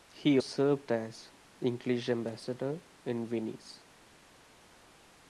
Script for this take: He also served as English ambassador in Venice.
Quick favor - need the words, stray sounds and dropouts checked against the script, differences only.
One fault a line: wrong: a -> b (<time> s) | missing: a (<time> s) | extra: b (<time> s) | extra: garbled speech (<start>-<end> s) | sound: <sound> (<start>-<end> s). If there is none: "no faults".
missing: also (0.4 s)